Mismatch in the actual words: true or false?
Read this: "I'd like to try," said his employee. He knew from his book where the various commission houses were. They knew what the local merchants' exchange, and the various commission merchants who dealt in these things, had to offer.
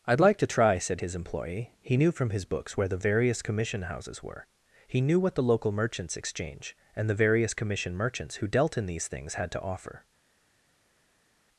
true